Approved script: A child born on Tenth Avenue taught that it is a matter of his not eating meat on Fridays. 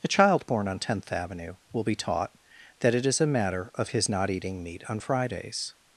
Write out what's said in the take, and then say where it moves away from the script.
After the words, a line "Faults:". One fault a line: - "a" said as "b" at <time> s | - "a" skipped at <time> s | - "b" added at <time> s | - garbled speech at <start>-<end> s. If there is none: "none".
A child born on Tenth Avenue will be taught that it is a matter of his not eating meat on Fridays.
Faults:
- "will be" added at 1.7 s